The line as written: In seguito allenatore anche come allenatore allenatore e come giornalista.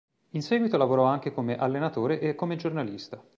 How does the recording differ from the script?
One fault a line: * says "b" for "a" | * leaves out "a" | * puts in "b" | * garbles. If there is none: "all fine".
* says "lavorò" for "allenatore"
* leaves out "allenatore"